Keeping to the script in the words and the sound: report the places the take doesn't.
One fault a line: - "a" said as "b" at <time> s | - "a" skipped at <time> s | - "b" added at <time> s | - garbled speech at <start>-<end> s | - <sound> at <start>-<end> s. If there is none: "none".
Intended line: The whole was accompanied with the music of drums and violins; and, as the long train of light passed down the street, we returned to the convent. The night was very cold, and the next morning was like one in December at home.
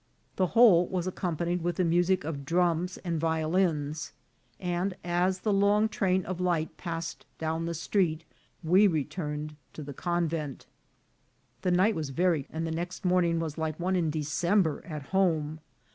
- "cold" skipped at 12.4 s